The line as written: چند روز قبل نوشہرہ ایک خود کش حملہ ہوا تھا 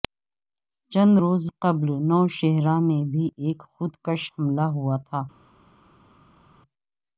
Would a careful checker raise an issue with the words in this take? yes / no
yes